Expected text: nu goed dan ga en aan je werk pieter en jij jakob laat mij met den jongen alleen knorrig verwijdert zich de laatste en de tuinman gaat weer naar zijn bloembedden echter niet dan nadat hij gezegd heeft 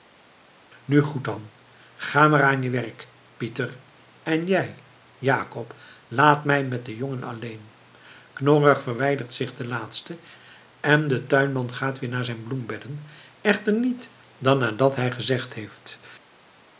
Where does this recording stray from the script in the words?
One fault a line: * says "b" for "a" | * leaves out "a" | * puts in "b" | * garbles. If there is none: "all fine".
* says "maar" for "en"